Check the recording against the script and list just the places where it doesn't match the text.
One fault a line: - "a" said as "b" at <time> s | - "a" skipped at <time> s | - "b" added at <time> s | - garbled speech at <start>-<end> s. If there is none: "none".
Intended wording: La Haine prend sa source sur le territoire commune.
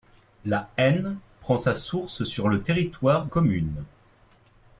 none